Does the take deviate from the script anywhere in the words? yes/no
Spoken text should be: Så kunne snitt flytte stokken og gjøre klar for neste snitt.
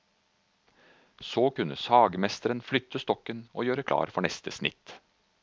yes